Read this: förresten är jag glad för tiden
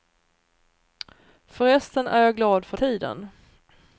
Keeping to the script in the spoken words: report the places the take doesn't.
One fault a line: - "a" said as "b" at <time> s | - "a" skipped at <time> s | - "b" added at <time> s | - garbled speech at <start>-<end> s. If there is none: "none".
none